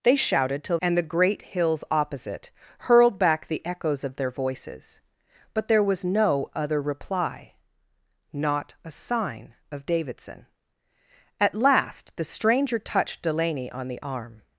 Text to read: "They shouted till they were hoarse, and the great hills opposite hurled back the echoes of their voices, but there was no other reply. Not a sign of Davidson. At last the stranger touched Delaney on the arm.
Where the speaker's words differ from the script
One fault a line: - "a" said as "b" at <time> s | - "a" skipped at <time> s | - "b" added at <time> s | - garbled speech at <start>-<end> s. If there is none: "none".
- "they were hoarse" skipped at 0.8 s